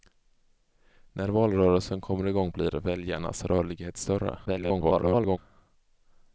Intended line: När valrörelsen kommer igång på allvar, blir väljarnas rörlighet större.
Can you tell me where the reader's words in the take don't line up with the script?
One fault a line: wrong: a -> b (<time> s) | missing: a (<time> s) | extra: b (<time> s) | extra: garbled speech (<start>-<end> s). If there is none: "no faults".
missing: på allvar (2.5 s)
extra: garbled speech (4.5-5.4 s)